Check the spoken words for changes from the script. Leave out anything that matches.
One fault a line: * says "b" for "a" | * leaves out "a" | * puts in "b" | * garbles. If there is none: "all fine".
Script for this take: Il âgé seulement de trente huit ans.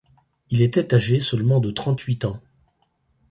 * puts in "était"